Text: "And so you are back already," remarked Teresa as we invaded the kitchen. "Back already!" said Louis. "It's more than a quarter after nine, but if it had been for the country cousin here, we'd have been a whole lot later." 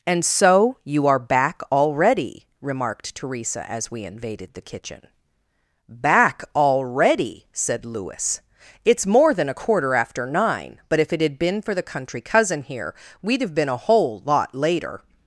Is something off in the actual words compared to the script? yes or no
no